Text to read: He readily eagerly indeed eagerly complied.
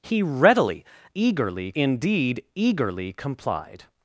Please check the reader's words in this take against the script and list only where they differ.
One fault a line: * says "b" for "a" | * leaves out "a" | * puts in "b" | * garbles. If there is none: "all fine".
all fine